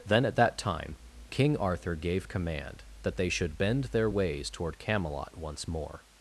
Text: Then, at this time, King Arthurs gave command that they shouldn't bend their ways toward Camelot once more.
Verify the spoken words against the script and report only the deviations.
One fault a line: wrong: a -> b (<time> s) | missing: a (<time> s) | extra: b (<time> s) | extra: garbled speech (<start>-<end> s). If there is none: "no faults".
wrong: this -> that (0.3 s)
wrong: Arthurs -> Arthur (1.6 s)
wrong: shouldn't -> should (3.3 s)